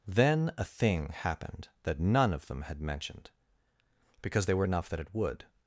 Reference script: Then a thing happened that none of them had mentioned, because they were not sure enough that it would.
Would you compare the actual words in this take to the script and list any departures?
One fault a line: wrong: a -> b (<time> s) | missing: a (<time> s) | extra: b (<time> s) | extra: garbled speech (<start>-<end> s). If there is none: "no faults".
missing: not sure (4.7 s)